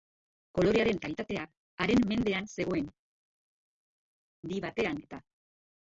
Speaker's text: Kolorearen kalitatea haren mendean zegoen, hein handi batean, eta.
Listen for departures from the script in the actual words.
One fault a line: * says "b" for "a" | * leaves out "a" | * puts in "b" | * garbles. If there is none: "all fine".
* leaves out "hein"